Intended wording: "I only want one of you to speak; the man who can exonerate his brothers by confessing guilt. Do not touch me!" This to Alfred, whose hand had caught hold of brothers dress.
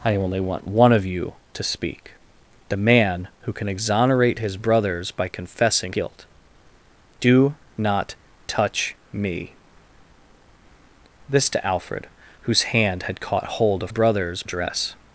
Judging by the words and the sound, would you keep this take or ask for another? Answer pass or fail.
pass